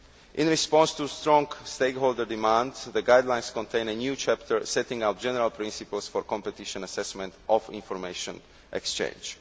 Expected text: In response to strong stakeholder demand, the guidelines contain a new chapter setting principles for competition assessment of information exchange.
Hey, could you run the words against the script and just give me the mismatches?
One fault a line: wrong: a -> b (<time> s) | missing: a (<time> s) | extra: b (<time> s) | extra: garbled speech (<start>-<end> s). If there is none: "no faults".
extra: out general (5.0 s)